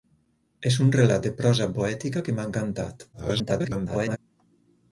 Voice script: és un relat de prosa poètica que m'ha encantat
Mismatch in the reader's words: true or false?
true